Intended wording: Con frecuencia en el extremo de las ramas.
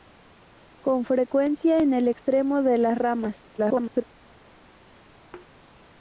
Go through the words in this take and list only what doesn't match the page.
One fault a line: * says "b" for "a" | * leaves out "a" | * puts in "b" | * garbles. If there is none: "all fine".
* garbles